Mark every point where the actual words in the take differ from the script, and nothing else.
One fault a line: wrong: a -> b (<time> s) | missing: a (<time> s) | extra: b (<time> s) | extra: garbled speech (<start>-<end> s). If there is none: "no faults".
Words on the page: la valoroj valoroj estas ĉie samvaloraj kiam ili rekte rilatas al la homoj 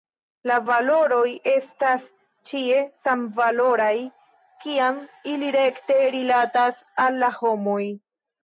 missing: valoroj (1.3 s)